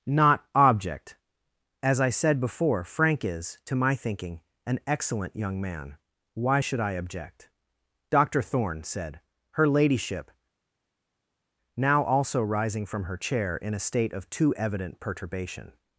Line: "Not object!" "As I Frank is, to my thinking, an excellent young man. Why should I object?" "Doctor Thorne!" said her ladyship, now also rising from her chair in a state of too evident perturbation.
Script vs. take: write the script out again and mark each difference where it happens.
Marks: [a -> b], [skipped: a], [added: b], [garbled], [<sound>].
"Not object!" "As I [added: said before] Frank is, to my thinking, an excellent young man. Why should I object?" "Doctor Thorne!" said her ladyship, now also rising from her chair in a state of too evident perturbation.